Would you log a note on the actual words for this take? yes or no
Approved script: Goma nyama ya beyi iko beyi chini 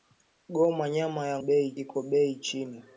no